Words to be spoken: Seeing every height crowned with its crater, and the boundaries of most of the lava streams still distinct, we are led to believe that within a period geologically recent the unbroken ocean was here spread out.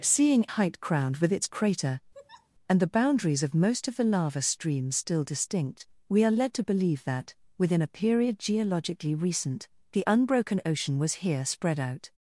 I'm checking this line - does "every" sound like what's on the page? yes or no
no